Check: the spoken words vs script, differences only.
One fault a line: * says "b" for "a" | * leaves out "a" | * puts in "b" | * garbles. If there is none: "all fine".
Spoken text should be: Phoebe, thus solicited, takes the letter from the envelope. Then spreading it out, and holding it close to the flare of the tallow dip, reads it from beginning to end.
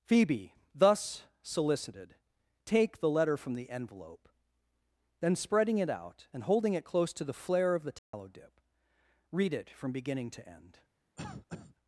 * says "take" for "takes"
* says "read" for "reads"